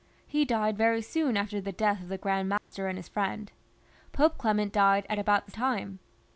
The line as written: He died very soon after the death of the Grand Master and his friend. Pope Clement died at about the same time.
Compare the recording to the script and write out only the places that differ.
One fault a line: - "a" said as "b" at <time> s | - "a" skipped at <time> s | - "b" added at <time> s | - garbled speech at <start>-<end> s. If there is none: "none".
- "same" skipped at 5.5 s